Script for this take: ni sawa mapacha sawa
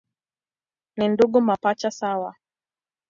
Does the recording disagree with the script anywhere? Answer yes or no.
yes